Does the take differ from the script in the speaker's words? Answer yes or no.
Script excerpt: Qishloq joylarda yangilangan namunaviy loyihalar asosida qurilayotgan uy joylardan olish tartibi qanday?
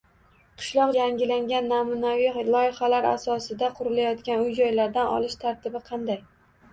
yes